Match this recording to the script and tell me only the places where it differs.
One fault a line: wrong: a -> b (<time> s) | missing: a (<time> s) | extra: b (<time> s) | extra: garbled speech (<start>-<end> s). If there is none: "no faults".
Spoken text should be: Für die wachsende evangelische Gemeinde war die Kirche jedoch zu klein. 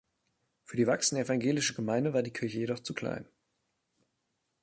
no faults